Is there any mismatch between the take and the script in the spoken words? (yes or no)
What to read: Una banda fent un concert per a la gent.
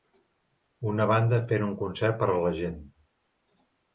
no